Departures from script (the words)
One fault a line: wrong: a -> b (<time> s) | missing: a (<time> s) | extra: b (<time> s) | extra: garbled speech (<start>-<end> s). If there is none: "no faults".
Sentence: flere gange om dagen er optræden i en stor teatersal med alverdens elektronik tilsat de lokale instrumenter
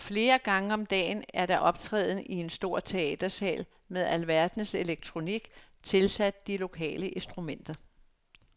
extra: der (1.4 s)